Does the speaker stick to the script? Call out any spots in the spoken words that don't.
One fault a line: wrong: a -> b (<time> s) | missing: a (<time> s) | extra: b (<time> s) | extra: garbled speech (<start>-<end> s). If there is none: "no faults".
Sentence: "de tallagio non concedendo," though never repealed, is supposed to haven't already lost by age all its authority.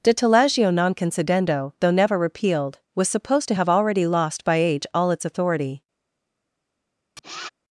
wrong: is -> was (3.0 s)
wrong: haven't -> have (3.5 s)